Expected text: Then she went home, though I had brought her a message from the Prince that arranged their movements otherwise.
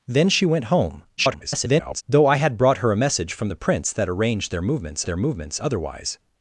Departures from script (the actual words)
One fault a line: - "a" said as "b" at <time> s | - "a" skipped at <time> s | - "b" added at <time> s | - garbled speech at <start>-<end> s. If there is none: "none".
- garbled speech at 1.2-2.0 s
- "their movements" added at 5.1 s